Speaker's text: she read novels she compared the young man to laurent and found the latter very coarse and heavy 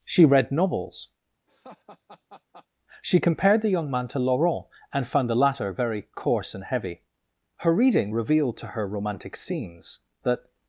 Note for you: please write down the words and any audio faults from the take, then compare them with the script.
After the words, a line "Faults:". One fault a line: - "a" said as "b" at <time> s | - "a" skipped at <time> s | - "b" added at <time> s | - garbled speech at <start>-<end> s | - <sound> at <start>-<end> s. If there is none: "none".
she read novels she compared the young man to laurent and found the latter very coarse and heavy her reading revealed to her romantic scenes that
Faults:
- laugh at 1.5-2.7 s
- "her reading revealed to her romantic scenes that" added at 7.6 s